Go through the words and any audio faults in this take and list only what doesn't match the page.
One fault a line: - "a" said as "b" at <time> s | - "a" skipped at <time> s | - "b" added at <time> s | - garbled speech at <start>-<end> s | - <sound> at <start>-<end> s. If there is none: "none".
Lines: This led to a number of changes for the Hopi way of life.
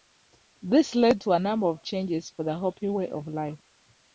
none